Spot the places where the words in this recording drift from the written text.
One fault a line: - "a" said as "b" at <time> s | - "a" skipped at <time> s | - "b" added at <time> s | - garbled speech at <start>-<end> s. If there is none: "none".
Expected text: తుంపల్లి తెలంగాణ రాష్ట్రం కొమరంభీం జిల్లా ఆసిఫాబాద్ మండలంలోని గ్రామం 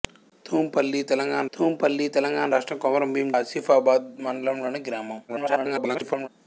- "తుంపల్లి తెలంగాణ" added at 1.5 s
- "జిల్లా" skipped at 3.3 s
- garbled speech at 5.3-6.3 s